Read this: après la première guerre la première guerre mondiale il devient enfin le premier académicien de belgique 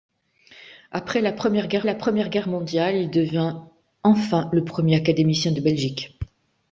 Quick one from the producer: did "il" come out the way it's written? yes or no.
yes